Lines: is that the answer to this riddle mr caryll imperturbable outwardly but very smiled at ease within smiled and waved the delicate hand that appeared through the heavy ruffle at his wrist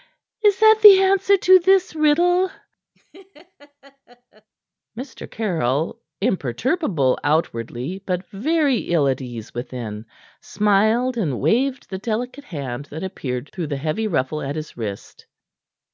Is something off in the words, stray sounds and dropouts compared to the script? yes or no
yes